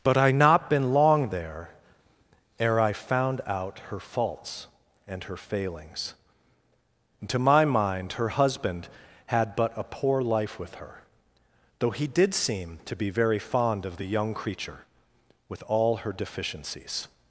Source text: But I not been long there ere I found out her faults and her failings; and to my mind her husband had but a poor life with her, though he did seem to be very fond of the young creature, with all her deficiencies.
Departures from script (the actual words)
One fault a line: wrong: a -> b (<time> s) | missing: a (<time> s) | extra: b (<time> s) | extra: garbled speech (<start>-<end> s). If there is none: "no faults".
no faults